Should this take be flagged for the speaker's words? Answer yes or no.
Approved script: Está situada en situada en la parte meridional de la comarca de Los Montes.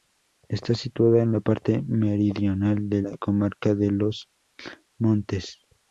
yes